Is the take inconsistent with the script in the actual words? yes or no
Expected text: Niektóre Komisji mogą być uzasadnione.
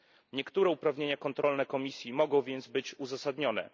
yes